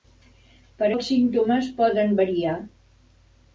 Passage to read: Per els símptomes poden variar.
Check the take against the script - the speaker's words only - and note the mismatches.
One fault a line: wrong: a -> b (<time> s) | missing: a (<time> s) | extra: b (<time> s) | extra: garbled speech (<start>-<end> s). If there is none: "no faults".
no faults